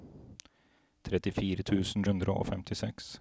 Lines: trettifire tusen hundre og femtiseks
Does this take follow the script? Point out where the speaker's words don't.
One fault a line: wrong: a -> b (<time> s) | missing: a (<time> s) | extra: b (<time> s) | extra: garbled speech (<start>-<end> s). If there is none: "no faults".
no faults